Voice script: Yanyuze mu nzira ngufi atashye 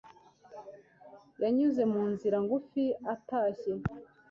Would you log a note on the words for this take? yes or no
no